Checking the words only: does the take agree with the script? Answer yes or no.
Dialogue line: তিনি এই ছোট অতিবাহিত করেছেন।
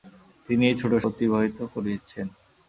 yes